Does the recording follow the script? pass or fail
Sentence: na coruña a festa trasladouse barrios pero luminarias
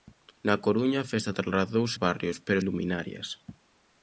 pass